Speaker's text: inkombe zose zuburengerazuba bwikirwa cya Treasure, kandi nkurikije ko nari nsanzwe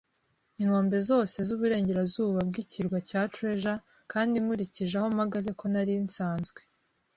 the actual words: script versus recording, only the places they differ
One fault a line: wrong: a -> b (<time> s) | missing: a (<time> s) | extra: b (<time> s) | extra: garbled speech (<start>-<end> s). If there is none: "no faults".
extra: aho mpagaze (5.0 s)